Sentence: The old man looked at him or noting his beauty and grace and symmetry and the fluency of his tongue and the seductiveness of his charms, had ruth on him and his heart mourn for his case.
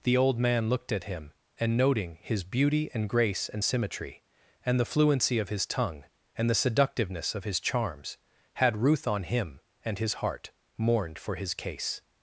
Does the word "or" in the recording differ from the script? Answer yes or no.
yes